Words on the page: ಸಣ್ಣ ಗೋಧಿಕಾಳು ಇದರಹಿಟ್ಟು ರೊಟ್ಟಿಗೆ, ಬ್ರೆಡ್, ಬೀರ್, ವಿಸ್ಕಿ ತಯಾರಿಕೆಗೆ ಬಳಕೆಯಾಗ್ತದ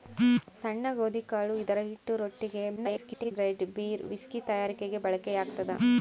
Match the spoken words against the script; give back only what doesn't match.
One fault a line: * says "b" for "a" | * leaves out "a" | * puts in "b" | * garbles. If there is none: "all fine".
* garbles